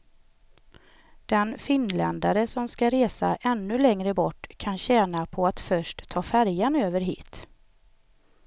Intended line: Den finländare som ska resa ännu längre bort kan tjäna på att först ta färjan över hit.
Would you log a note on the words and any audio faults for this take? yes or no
no